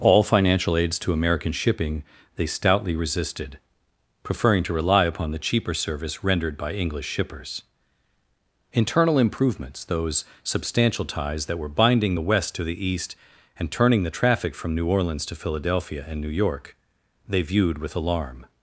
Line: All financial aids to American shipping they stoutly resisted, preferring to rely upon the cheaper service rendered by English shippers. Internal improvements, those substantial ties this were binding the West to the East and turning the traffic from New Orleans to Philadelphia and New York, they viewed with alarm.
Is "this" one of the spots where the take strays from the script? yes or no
yes